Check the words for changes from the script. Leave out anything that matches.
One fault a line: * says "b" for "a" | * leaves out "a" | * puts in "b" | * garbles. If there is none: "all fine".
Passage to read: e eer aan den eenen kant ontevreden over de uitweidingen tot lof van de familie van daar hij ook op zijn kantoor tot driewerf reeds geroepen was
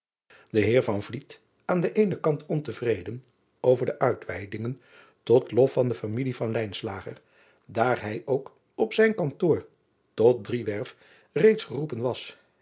all fine